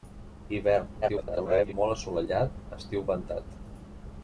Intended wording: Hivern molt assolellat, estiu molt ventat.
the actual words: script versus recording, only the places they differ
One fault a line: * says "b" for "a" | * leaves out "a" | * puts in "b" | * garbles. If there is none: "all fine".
* garbles
* leaves out "molt"